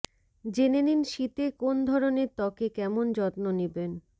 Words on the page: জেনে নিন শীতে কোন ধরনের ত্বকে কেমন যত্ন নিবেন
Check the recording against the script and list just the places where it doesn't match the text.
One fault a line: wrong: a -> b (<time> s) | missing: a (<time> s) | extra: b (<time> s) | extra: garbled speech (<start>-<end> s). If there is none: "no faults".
no faults